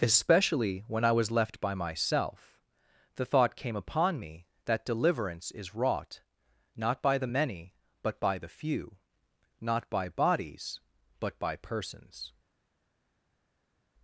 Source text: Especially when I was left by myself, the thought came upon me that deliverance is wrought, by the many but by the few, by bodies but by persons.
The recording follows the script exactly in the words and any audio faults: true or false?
false